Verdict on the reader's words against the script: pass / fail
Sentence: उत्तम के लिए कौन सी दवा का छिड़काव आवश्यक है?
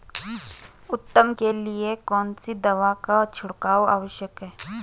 pass